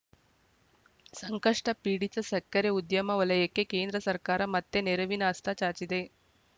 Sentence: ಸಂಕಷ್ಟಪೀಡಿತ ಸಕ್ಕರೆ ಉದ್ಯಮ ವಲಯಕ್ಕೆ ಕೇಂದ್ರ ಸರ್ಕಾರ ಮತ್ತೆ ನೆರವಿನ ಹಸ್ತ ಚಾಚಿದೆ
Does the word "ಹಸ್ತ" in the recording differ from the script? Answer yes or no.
no